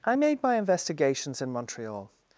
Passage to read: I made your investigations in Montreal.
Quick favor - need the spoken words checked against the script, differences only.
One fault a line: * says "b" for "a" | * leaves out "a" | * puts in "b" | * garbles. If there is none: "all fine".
* says "my" for "your"